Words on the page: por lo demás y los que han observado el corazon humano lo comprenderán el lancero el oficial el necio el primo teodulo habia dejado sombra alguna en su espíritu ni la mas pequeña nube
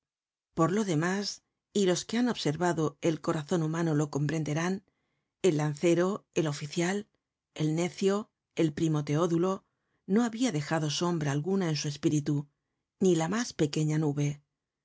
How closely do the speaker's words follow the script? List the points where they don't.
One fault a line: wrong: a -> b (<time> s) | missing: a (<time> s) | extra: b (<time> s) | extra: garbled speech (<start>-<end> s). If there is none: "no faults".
extra: no (10.1 s)